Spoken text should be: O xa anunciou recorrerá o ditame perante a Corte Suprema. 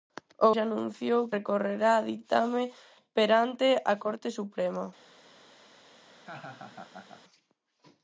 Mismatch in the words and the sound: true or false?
true